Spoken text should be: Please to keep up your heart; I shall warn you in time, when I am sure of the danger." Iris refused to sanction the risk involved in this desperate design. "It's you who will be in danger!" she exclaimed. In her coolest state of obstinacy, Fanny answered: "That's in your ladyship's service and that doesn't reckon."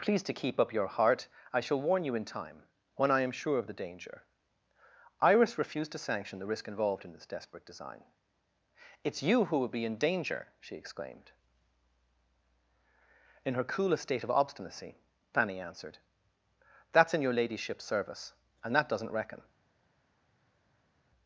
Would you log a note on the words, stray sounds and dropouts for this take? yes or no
no